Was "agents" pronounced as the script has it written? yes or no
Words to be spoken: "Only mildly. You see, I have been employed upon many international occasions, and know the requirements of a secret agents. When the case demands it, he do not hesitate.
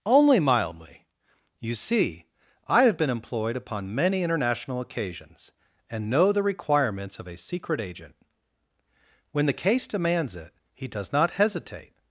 no